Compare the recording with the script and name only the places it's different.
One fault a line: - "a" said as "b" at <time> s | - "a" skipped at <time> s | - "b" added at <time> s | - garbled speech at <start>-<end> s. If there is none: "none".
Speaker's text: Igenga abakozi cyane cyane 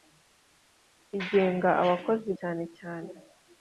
none